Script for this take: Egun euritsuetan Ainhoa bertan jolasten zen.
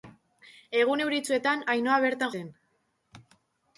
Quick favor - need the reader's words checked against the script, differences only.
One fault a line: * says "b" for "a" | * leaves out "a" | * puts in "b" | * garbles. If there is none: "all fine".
* leaves out "jolasten"